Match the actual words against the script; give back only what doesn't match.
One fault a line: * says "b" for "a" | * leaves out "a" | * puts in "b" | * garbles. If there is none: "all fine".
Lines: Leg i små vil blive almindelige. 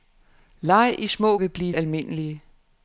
all fine